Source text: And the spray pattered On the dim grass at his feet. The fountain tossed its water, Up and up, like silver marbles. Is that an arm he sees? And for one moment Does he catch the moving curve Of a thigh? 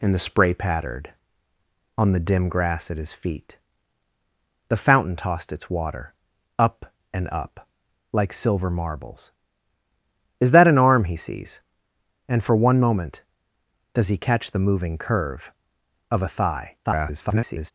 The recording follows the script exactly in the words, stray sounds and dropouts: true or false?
false